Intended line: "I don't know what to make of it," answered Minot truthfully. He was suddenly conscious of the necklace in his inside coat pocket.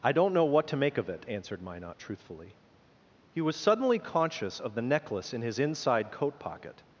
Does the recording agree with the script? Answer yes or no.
yes